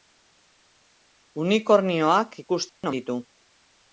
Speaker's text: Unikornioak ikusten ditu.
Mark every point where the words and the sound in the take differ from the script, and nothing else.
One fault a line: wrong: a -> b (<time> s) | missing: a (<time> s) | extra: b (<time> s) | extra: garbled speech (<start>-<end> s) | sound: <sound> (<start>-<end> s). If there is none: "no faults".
sound: dropout (2.7-2.8 s)